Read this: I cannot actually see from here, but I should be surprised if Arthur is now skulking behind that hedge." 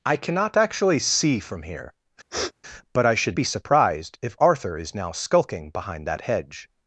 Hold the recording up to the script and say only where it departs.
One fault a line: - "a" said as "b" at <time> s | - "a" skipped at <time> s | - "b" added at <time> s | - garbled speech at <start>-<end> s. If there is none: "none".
none